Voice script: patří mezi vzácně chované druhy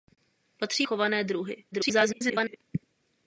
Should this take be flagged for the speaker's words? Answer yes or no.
yes